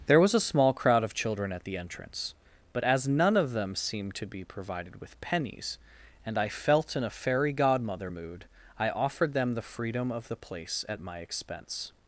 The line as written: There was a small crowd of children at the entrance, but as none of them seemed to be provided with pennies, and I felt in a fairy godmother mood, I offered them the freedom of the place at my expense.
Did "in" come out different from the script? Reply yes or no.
no